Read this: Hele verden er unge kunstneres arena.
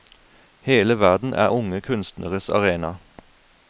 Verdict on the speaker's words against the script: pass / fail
pass